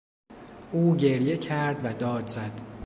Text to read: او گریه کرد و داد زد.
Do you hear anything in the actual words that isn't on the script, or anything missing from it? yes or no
no